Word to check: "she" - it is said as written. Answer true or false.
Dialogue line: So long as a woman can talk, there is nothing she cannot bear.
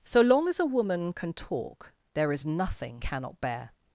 false